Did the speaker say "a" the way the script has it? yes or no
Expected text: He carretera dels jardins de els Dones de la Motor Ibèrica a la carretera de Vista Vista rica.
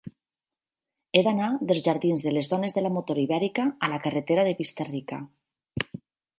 yes